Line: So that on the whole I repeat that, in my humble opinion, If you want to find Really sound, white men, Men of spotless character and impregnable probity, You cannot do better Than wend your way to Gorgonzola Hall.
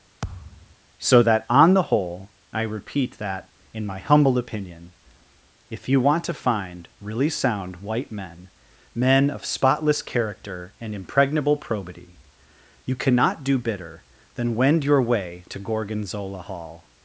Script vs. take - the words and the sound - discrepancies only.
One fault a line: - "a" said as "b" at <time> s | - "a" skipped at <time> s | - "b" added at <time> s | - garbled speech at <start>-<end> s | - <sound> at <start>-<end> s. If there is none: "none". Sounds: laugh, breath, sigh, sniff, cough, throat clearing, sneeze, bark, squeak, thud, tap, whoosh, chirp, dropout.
- thud at 0.2-0.8 s
- "better" said as "bitter" at 13.6 s